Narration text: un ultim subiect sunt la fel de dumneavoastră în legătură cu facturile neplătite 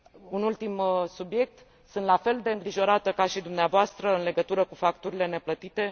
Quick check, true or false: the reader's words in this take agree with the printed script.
false